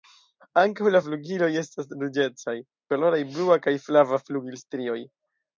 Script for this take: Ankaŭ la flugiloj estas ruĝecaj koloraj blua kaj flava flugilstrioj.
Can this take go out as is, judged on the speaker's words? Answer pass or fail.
pass